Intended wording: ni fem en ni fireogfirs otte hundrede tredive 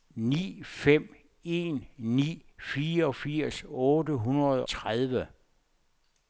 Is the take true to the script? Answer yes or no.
yes